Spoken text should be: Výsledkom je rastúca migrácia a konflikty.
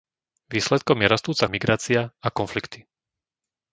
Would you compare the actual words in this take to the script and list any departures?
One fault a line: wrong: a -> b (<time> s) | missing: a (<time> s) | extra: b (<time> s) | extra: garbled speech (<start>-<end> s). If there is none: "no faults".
no faults